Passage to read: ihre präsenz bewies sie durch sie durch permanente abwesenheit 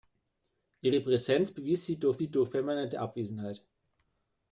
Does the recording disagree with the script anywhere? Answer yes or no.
no